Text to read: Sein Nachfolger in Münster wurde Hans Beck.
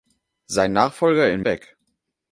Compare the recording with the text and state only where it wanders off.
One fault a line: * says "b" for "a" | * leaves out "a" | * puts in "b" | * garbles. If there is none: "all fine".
* leaves out "Münster wurde Hans"